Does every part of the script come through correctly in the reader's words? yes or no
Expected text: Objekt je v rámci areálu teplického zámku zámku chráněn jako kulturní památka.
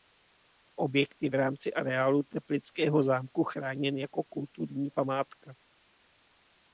no